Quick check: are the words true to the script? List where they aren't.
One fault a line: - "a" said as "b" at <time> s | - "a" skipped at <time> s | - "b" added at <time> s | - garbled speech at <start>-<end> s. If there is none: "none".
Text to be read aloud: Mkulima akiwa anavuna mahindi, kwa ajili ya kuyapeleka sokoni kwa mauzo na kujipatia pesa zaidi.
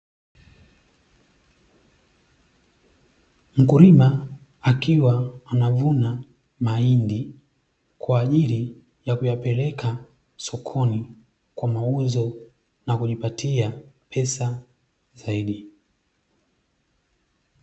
none